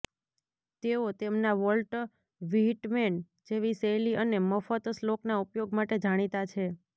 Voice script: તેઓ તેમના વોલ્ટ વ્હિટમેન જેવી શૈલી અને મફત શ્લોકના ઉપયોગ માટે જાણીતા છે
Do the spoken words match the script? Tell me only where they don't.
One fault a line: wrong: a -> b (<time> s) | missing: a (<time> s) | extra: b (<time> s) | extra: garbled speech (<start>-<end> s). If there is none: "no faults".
no faults